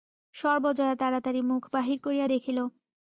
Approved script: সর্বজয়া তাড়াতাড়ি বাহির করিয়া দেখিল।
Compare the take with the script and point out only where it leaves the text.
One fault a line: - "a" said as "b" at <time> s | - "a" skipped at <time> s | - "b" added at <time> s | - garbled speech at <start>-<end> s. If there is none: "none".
- "মুখ" added at 1.4 s